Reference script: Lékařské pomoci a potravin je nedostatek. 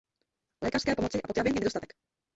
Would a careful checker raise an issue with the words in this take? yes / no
no